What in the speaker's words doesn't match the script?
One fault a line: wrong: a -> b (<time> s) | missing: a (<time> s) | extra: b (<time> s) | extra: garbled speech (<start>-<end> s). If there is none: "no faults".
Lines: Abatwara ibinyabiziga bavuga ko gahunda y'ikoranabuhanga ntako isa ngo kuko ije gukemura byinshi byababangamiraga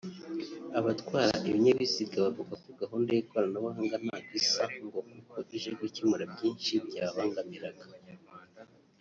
no faults